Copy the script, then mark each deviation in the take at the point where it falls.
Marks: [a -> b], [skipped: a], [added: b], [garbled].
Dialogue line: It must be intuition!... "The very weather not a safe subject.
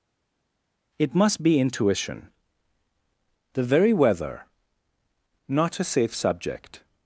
It must be intuition!... "The very weather not a safe subject.